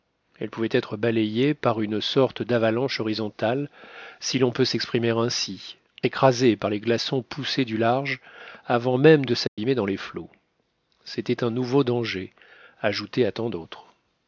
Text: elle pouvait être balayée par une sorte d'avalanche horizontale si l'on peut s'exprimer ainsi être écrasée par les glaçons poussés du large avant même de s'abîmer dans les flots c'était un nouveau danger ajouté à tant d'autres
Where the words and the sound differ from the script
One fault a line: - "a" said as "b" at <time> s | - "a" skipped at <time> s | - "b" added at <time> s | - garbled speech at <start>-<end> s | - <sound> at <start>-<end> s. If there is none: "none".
- "être" skipped at 5.8 s
- dropout at 9.5-9.6 s